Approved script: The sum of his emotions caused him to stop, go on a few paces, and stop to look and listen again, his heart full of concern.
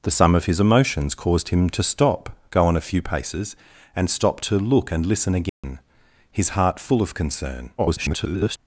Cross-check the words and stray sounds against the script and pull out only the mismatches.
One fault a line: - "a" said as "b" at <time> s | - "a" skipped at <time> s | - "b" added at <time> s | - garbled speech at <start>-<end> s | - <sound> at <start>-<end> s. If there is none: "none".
- dropout at 5.5-5.6 s
- garbled speech at 7.8-8.6 s